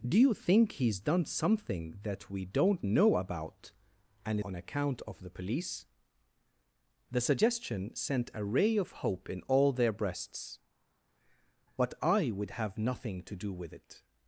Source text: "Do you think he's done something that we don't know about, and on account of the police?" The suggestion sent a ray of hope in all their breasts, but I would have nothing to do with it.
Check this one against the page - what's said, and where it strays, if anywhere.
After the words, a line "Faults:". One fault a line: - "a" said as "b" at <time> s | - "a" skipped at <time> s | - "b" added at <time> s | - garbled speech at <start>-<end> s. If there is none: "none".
"Do you think he's done something that we don't know about, and on account of the police?" The suggestion sent a ray of hope in all their breasts, but I would have nothing to do with it.
Faults:
none